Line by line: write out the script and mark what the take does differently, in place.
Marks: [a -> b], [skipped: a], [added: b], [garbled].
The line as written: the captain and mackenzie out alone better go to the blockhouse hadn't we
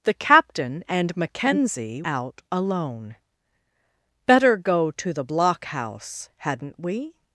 the captain and mackenzie out alone better go to the blockhouse hadn't we